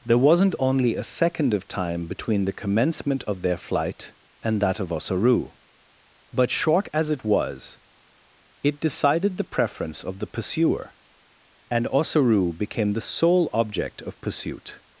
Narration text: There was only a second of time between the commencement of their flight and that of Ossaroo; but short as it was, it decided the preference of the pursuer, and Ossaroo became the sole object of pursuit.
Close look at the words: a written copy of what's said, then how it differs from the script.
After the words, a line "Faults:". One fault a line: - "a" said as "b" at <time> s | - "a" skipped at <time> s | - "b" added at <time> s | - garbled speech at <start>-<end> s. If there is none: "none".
There wasn't only a second of time between the commencement of their flight and that of Ossaroo; but short as it was, it decided the preference of the pursuer, and Ossaroo became the sole object of pursuit.
Faults:
- "was" said as "wasn't" at 0.2 s